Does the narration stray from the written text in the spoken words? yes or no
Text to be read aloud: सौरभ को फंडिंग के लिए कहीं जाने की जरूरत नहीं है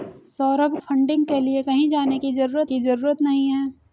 yes